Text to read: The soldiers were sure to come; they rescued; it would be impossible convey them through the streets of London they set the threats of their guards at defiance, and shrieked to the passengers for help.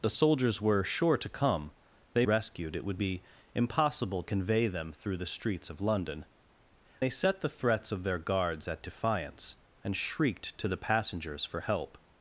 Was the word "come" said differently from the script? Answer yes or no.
no